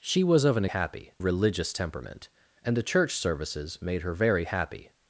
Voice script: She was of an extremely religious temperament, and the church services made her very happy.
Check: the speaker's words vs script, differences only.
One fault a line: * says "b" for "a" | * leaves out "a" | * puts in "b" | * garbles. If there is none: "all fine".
* says "happy" for "extremely"